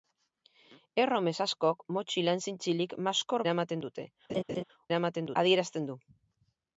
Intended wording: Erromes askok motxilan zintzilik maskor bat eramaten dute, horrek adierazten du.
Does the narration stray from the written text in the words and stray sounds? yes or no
yes